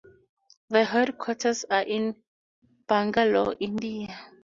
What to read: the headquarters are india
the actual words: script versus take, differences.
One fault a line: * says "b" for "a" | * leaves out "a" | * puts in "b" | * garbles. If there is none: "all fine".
* puts in "in bangalore"